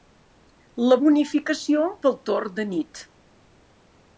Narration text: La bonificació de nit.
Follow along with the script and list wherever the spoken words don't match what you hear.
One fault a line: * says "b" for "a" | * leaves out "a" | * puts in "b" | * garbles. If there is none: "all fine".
* puts in "pel torn"